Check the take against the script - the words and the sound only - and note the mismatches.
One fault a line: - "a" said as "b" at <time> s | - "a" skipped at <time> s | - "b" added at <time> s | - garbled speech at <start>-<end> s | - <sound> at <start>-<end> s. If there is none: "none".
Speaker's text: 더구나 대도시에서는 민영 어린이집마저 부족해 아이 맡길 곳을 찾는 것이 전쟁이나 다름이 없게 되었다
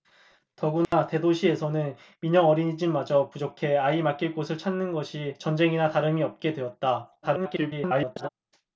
- dropout at 0.8-0.9 s
- garbled speech at 7.2-8.3 s